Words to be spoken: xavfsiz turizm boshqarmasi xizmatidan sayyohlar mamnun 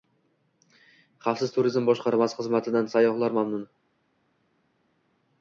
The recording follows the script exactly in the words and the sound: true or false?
true